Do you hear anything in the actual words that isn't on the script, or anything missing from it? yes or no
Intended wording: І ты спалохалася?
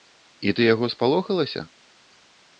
yes